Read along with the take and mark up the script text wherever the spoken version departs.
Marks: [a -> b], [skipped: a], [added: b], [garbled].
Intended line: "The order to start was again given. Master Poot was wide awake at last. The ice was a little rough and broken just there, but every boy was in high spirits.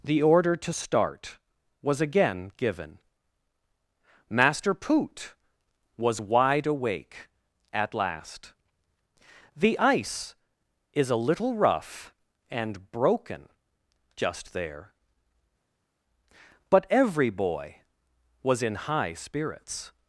"The order to start was again given. Master Poot was wide awake at last. The ice [was -> is] a little rough and broken just there, but every boy was in high spirits.